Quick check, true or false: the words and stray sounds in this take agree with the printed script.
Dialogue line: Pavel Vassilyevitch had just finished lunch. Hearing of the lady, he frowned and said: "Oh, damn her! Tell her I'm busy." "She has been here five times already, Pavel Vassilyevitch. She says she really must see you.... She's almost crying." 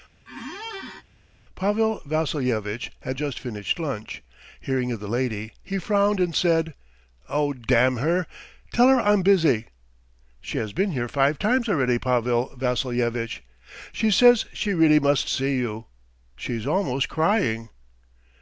false